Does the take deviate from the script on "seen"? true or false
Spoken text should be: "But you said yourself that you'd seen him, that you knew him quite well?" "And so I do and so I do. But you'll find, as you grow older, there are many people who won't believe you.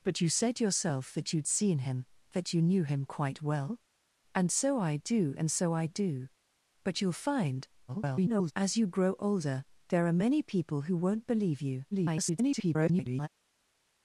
false